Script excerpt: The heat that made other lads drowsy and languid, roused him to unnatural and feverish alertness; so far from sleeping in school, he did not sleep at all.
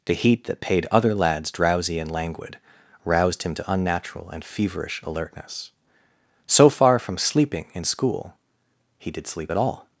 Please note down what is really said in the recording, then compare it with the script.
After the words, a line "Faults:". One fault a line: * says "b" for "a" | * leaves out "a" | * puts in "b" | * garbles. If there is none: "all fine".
The heat that paid other lads drowsy and languid, roused him to unnatural and feverish alertness; so far from sleeping in school, he did sleep at all.
Faults:
* says "paid" for "made"
* leaves out "not"